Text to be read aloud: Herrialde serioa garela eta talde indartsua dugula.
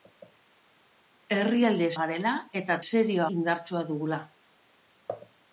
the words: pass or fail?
fail